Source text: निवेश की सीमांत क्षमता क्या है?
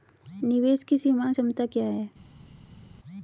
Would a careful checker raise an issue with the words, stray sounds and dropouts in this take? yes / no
no